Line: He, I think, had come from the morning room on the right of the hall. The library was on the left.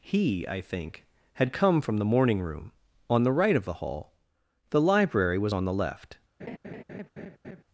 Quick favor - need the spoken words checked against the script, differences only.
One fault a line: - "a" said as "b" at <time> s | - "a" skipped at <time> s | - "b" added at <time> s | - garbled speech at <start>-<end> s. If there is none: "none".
none